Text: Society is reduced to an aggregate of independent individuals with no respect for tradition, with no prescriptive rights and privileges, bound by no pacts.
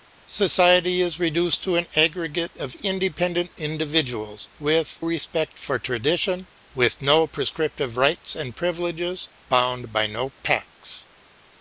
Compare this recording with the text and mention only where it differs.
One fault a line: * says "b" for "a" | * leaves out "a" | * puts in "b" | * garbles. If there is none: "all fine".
* leaves out "no"